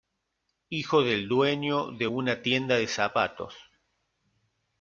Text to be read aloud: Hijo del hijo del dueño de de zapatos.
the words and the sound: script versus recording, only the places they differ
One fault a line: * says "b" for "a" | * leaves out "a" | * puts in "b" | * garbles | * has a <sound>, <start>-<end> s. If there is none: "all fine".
* says "dueño de una tienda" for "hijo del dueño de"